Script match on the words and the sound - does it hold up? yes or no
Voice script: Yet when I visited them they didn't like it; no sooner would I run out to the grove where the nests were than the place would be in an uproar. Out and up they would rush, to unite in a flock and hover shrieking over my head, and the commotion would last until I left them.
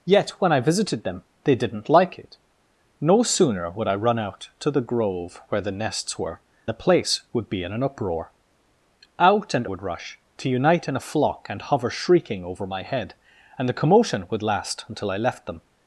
no